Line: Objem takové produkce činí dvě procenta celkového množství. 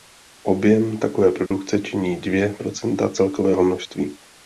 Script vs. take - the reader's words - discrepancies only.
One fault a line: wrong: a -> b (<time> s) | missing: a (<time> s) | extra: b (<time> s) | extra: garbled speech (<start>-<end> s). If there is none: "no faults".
no faults